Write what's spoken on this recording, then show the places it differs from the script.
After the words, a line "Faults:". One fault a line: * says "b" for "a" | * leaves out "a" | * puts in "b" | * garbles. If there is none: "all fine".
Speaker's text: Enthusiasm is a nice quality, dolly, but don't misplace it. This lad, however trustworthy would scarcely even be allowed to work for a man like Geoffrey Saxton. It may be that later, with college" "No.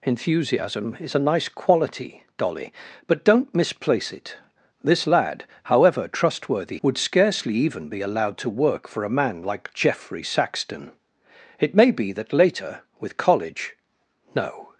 Enthusiasm is a nice quality, dolly, but don't misplace it. This lad, however trustworthy would scarcely even be allowed to work for a man like Geoffrey Saxton. It may be that later, with college" "No.
Faults:
all fine